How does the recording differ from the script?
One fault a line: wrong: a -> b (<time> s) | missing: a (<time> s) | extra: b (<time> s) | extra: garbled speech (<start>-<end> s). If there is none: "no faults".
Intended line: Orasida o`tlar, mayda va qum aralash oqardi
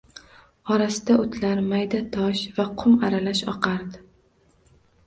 extra: tosh (2.2 s)